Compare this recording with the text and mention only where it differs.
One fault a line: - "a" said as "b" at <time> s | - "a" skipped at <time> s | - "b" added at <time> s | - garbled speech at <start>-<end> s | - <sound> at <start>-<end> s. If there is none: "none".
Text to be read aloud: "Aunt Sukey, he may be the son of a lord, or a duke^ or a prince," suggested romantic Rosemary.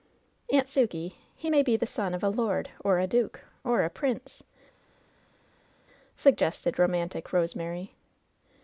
none